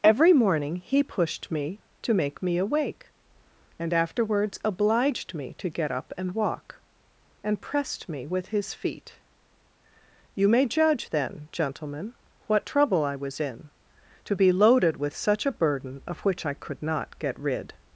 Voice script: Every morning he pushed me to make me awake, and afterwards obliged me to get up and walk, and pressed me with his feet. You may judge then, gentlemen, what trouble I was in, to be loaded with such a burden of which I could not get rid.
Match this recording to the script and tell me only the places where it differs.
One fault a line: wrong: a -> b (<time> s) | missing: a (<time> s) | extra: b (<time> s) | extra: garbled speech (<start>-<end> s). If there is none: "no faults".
no faults